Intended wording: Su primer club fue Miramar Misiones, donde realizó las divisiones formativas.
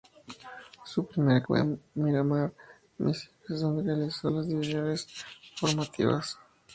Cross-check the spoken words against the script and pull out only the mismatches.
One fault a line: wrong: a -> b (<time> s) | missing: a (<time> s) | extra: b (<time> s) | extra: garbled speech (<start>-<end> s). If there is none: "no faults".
missing: club (1.4 s)